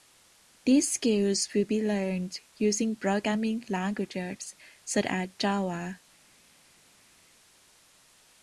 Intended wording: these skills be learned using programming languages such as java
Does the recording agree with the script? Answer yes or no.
no